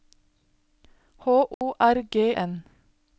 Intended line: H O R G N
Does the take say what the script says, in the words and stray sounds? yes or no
no